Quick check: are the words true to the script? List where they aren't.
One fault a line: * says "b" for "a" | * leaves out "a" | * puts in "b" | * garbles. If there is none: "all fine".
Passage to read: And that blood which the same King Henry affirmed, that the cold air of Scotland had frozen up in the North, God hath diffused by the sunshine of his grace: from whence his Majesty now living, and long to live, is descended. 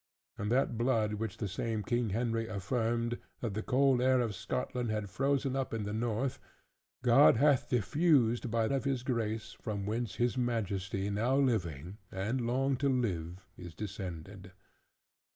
* leaves out "the sunshine"